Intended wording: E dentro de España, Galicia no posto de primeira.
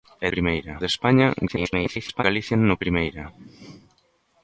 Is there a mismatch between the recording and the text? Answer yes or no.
yes